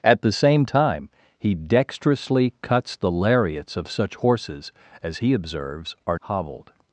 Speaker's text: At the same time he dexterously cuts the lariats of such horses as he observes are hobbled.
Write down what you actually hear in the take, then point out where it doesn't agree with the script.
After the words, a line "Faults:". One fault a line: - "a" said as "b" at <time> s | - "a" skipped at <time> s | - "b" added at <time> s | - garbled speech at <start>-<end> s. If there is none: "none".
At the same time he dexterously cuts the lariats of such horses as he observes are hobbled.
Faults:
none